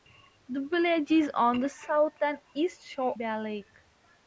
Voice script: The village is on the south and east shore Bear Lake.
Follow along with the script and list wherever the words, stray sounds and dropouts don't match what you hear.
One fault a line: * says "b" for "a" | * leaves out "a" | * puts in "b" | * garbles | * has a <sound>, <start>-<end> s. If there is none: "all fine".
all fine